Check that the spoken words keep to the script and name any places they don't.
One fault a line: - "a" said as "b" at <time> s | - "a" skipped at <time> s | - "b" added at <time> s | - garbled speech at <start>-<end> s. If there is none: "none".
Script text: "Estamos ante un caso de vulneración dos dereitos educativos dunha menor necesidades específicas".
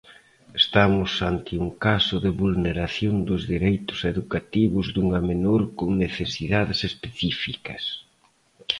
- "con" added at 5.8 s